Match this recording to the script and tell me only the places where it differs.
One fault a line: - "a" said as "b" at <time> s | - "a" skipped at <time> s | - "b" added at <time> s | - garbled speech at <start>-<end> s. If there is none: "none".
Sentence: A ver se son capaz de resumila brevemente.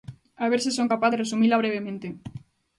none